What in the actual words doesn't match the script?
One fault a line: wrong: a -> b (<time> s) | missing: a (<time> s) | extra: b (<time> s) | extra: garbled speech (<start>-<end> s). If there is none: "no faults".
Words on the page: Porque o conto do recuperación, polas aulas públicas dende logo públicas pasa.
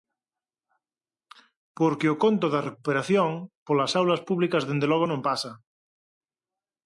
wrong: do -> da (2.5 s)
wrong: públicas -> non (5.1 s)